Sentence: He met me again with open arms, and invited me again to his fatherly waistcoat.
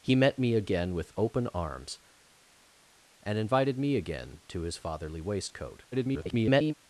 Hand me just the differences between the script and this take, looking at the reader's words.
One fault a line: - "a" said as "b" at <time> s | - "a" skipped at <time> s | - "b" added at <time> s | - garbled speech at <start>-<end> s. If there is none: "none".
- garbled speech at 5.9-6.7 s